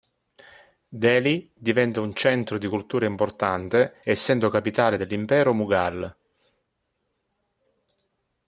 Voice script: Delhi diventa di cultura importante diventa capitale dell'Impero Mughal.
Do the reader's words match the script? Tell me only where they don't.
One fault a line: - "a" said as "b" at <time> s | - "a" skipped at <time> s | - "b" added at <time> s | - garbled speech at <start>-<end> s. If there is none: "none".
- "un centro" added at 2.0 s
- "diventa" said as "essendo" at 4.0 s